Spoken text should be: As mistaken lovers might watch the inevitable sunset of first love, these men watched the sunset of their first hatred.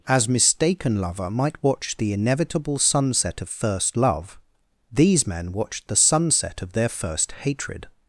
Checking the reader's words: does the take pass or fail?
fail